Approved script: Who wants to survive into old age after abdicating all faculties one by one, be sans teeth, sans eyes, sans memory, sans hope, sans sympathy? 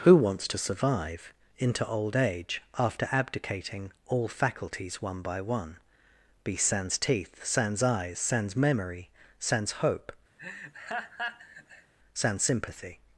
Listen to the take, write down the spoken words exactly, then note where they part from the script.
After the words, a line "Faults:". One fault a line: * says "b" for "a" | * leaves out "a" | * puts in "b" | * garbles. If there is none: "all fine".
Who wants to survive into old age after abdicating all faculties one by one, be sans teeth, sans eyes, sans memory, sans hope, sans sympathy?
Faults:
all fine